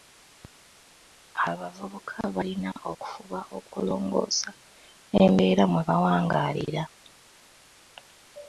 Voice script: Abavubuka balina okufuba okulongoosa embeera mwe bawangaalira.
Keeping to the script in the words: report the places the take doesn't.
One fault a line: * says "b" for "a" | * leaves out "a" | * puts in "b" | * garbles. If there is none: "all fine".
all fine